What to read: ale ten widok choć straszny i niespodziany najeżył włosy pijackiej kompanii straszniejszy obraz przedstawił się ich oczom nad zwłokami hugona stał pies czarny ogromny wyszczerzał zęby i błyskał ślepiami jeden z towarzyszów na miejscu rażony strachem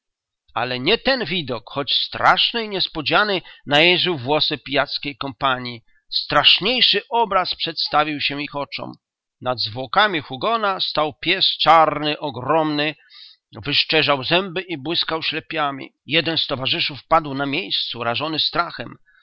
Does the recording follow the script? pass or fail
fail